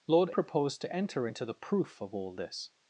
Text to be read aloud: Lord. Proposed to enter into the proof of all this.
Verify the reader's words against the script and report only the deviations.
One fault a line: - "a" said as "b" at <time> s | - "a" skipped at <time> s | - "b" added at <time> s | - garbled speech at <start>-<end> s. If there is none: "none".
none